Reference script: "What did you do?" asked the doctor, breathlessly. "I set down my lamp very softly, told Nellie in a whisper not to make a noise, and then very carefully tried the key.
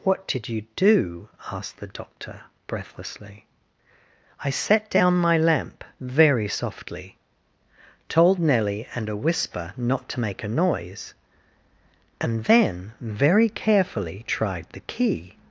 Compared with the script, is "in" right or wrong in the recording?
wrong